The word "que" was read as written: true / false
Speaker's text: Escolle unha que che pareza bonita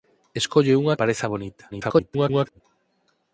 false